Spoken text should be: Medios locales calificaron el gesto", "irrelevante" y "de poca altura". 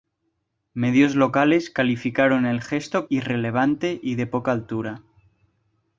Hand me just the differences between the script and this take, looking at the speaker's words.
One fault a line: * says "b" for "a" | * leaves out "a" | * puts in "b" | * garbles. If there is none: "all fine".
all fine